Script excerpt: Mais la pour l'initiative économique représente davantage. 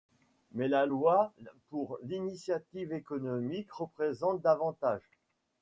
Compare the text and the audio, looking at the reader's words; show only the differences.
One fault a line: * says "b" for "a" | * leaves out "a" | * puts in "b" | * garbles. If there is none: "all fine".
* puts in "loi"